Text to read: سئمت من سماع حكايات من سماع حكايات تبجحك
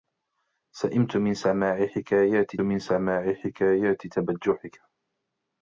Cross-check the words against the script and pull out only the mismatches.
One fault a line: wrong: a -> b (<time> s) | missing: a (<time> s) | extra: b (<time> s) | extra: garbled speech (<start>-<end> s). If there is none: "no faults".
no faults